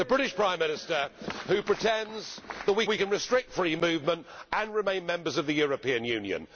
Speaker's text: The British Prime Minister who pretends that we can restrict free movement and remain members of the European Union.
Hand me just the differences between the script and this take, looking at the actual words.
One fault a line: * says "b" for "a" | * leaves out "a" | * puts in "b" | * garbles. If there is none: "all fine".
* puts in "we"